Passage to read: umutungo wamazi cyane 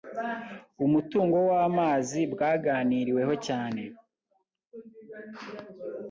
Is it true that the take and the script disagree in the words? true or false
true